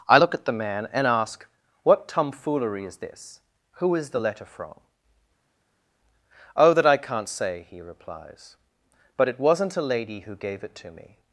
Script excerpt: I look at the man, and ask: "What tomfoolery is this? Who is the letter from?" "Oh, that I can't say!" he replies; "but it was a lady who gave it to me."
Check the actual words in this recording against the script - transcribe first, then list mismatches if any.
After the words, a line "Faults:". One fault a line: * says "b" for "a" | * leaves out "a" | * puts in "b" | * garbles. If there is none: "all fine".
I look at the man, and ask: "What tomfoolery is this? Who is the letter from?" "Oh, that I can't say!" he replies; "but it wasn't a lady who gave it to me."
Faults:
* says "wasn't" for "was"